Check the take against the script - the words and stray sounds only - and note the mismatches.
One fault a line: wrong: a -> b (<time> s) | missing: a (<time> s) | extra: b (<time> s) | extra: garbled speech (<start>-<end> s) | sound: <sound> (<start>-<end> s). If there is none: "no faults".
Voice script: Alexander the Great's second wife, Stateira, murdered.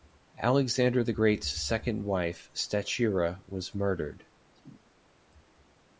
extra: was (3.5 s)
sound: cough (4.5-4.9 s)